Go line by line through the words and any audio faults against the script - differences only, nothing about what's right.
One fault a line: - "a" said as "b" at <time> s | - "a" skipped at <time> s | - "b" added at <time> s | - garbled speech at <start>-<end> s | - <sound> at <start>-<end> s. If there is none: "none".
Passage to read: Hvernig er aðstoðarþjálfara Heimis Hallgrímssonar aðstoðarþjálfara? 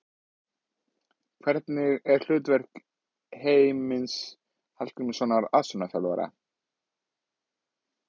- "aðstoðarþjálfara" said as "hlutverk" at 2.3 s